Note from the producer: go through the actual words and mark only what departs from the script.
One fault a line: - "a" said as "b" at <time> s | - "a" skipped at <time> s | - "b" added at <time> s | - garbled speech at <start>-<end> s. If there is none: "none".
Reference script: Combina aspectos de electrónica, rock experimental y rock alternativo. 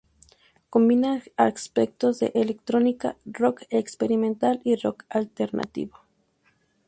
none